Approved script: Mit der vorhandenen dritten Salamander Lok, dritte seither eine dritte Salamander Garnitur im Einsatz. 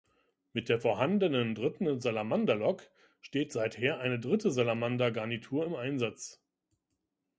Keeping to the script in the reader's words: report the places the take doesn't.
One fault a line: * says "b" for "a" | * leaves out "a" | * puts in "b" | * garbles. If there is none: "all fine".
* says "steht" for "dritte"